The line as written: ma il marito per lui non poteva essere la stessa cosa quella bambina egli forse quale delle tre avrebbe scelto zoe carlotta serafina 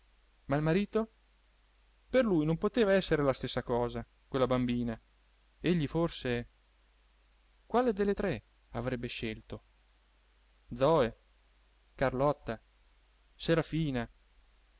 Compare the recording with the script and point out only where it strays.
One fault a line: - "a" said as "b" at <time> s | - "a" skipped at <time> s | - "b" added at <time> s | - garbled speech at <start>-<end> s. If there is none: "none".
none